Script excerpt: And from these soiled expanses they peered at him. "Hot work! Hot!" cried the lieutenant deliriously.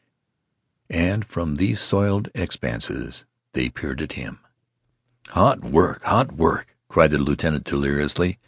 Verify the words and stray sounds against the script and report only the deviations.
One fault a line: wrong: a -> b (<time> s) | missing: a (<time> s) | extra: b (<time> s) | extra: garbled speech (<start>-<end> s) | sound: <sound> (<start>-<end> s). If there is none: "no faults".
extra: work (6.3 s)